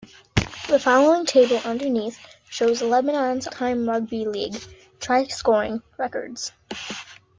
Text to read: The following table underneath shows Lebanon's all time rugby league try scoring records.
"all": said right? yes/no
no